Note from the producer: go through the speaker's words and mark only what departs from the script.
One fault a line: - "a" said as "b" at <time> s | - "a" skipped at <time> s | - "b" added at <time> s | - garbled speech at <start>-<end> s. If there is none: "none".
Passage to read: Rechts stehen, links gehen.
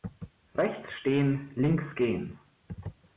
none